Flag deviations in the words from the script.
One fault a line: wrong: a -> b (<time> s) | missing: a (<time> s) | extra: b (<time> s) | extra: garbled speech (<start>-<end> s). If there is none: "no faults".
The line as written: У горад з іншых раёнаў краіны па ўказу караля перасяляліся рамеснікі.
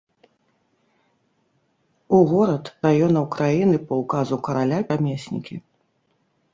missing: з іншых (2.7 s)
missing: перасяляліся (4.8 s)